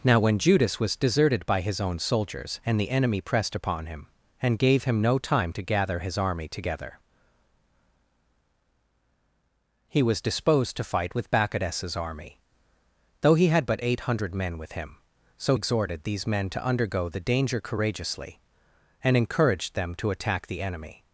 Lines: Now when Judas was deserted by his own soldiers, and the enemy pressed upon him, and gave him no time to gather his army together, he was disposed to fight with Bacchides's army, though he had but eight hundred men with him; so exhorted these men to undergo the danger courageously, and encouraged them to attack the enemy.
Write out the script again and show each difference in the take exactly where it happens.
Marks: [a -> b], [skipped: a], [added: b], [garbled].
Now when Judas was deserted by his own soldiers, and the enemy pressed upon him, and gave him no time to gather his army together, he was disposed to fight with Bacchides's army, though he had but eight hundred men with him; so exhorted these men to undergo the danger courageously, and encouraged them to attack the enemy.